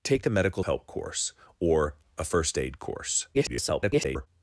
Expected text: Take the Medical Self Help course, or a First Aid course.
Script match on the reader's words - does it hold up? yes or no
no